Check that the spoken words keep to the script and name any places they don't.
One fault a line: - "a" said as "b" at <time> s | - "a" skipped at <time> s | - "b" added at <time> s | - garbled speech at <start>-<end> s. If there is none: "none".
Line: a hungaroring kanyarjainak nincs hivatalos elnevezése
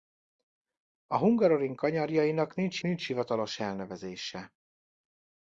- "nincs" added at 2.8 s